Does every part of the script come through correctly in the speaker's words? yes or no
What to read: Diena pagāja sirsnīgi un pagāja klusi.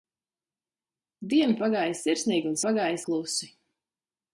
yes